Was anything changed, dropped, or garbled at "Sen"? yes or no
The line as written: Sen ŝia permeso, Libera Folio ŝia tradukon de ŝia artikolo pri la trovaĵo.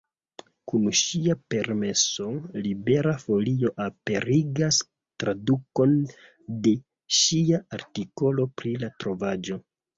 yes